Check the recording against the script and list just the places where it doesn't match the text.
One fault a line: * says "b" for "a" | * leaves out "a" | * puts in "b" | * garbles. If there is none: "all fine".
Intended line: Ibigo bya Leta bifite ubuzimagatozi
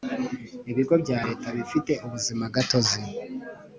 all fine